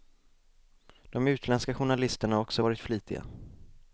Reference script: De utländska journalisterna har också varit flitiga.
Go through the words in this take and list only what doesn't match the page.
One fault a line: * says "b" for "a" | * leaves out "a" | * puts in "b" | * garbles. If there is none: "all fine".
all fine